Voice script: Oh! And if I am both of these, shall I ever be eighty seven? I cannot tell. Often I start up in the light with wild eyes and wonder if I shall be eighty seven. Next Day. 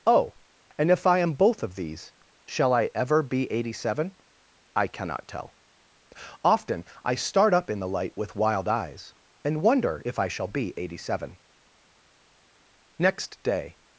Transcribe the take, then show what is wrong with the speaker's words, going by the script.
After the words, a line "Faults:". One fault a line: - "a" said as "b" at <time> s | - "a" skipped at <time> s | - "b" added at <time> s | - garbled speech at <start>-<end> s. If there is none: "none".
Oh! And if I am both of these, shall I ever be eighty seven? I cannot tell. Often I start up in the light with wild eyes and wonder if I shall be eighty seven. Next Day.
Faults:
none